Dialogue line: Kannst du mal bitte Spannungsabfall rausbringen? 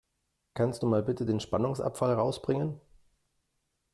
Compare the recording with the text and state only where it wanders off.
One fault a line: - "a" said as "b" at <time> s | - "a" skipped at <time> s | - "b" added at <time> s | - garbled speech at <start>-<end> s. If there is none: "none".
- "den" added at 1.3 s